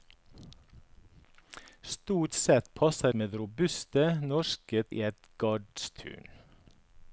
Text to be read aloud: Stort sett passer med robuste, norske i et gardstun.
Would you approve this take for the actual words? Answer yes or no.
yes